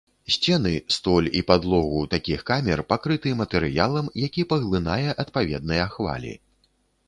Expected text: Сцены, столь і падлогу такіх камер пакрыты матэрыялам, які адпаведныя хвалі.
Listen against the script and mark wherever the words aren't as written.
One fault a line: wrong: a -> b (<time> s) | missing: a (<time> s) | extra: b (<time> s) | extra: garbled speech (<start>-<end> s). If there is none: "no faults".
extra: паглынае (4.5 s)